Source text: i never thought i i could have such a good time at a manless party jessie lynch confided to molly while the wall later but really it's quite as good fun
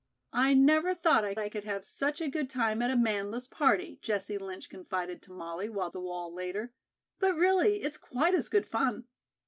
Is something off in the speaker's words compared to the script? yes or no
no